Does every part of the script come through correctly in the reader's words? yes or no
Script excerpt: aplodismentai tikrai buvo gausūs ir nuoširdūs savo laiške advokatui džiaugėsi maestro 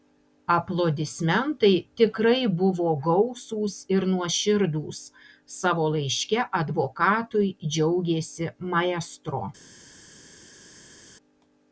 yes